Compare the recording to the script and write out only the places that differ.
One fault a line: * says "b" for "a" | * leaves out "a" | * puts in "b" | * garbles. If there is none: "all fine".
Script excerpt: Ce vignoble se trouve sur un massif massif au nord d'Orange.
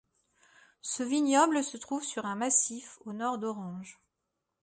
* leaves out "massif"